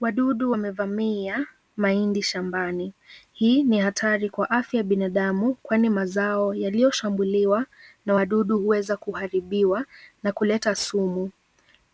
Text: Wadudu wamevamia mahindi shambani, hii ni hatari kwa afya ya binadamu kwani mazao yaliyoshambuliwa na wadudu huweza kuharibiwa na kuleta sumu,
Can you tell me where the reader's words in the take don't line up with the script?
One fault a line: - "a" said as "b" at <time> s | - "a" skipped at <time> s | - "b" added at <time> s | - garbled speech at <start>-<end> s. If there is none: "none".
none